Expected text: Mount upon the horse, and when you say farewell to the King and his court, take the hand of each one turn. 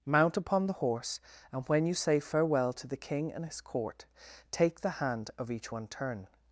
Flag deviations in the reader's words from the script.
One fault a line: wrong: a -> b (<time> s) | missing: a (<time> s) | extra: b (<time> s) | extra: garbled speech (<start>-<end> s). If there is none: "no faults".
no faults